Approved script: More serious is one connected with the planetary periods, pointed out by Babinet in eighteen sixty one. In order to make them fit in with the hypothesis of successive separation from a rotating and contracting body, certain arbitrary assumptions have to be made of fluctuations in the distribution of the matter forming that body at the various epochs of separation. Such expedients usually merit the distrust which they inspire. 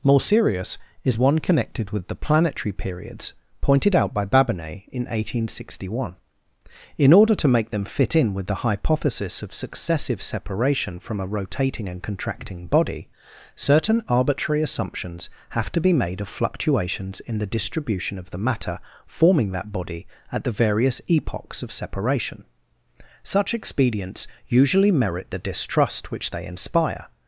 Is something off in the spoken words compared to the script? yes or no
no